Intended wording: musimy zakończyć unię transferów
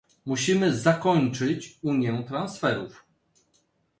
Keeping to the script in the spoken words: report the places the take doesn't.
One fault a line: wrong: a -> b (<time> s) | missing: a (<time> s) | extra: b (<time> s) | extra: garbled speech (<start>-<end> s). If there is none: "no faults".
no faults